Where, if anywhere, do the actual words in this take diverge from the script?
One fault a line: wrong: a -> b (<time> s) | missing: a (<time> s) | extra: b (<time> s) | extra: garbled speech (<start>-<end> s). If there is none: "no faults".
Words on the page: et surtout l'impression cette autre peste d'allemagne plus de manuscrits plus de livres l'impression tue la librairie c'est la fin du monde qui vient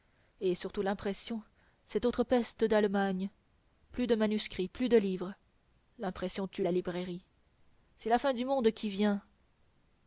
no faults